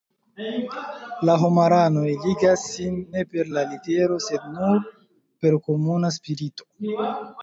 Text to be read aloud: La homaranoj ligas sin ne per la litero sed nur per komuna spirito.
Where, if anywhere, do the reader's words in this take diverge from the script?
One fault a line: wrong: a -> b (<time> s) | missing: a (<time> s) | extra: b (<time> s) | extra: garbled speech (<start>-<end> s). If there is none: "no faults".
no faults